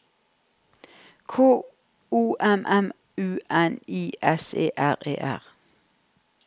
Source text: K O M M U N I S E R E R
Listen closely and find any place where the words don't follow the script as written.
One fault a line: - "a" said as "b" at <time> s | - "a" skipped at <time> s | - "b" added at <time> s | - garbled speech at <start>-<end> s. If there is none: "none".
none